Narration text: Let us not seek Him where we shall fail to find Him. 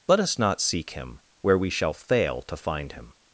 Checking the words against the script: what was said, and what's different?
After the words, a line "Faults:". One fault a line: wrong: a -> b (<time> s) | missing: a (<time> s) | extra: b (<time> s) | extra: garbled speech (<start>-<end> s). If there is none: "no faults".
Let us not seek Him where we shall fail to find Him.
Faults:
no faults